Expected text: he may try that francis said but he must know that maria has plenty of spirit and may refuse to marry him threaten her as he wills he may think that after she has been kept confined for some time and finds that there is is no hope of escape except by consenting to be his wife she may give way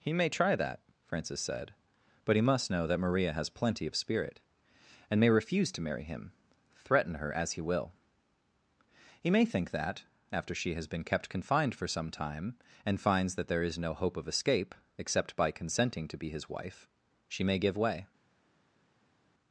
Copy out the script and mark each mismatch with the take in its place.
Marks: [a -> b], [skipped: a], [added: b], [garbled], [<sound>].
he may try that francis said but he must know that maria has plenty of spirit and may refuse to marry him threaten her as he [wills -> will] he may think that after she has been kept confined for some time and finds that there is [skipped: is] no hope of escape except by consenting to be his wife she may give way